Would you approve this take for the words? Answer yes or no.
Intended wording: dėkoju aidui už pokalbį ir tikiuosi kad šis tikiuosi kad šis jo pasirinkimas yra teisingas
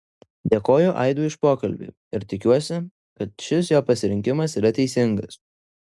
no